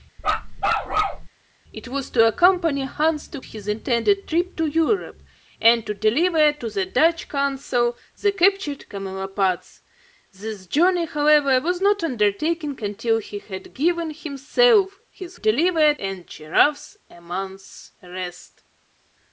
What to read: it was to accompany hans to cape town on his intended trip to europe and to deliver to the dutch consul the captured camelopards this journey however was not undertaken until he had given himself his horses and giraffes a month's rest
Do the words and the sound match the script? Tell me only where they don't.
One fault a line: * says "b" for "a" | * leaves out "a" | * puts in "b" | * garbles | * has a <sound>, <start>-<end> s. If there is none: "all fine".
* has a bark, 0.2-1.3 s
* leaves out "cape town on"
* says "deliver" for "horses"